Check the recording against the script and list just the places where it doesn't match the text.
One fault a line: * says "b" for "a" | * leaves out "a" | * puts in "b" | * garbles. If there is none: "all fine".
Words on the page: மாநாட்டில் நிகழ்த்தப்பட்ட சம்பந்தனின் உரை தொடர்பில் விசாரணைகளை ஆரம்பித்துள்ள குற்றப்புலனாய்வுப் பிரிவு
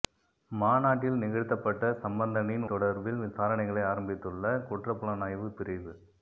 * leaves out "உரை"